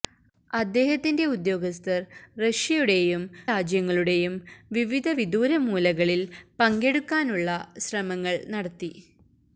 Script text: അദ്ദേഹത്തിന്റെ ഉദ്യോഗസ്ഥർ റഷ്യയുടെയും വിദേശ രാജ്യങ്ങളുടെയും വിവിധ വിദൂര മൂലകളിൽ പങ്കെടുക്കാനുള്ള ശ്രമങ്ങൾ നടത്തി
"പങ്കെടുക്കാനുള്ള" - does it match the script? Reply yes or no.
yes